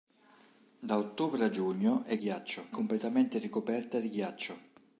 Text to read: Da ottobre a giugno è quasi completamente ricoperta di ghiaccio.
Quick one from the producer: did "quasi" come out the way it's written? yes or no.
no